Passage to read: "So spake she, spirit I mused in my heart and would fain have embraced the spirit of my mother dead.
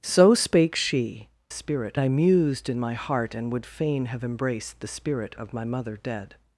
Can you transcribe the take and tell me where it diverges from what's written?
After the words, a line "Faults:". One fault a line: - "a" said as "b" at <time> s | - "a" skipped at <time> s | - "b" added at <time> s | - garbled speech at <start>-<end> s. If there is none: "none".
"So spake she, spirit I mused in my heart and would fain have embraced the spirit of my mother dead.
Faults:
none